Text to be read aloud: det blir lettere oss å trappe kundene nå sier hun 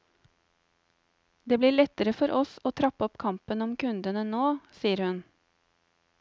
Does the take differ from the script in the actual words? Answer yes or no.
yes